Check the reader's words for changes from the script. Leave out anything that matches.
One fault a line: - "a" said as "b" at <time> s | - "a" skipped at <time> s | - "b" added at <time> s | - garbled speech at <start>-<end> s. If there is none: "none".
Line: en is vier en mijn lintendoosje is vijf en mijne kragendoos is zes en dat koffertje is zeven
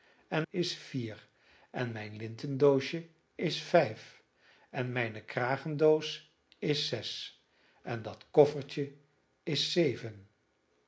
none